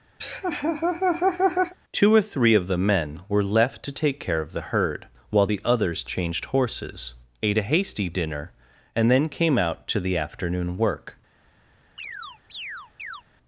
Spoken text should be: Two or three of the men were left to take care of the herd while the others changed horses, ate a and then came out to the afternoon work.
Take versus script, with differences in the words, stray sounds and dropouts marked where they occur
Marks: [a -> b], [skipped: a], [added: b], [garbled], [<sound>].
[laugh] Two or three of the men were left to take care of the herd while the others changed horses, ate a [added: hasty dinner] and then came out to the afternoon work. [chirp]